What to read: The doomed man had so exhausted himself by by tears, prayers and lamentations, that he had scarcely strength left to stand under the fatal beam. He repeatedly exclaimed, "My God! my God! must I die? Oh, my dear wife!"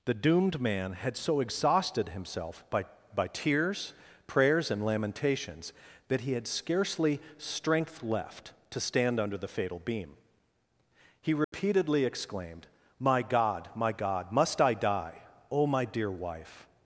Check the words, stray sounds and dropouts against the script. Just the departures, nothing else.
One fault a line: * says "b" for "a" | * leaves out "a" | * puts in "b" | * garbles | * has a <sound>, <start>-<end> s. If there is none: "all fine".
* has a dropout, 11.4-11.5 s